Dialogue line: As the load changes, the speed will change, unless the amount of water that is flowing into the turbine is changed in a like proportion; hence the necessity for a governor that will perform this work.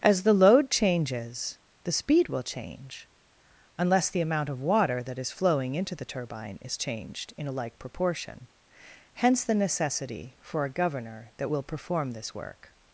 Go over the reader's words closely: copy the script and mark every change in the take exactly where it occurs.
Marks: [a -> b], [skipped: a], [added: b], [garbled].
As the load changes, the speed will change, unless the amount of water that is flowing into the turbine is changed in a like proportion; hence the necessity for a governor that will perform this work.